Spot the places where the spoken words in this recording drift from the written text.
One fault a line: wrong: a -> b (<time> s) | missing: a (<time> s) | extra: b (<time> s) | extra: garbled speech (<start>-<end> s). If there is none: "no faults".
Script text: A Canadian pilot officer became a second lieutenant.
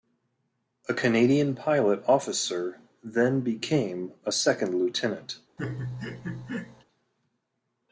extra: then (3.0 s)